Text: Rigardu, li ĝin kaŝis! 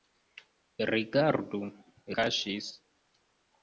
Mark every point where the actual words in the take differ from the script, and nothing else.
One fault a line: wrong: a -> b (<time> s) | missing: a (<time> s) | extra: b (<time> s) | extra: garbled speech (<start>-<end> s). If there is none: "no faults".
missing: li ĝin (1.6 s)